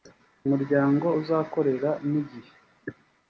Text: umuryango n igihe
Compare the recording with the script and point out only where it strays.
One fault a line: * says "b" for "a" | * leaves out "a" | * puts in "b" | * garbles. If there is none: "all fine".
* puts in "uzakorera"